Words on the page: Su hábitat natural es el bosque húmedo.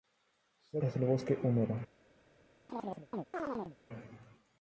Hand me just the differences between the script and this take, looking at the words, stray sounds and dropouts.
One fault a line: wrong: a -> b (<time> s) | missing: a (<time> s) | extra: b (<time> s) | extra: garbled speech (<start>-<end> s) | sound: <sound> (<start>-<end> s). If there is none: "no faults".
missing: hábitat natural (0.8 s)
sound: chirp (2.7-3.8 s)